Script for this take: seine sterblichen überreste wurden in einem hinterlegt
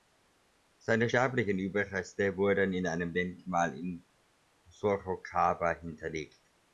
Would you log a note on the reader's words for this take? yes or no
yes